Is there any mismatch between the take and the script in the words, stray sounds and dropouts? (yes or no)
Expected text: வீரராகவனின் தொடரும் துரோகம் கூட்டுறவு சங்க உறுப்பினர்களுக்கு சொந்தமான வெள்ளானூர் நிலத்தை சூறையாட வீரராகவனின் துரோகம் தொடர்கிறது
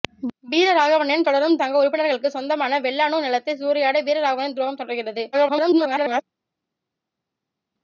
yes